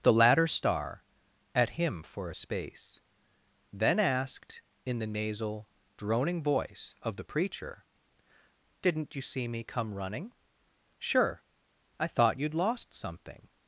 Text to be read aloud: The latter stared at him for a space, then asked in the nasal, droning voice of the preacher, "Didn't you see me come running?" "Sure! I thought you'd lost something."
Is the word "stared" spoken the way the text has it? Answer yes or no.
no